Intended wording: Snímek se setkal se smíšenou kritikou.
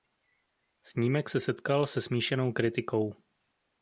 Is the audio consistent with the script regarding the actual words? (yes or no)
yes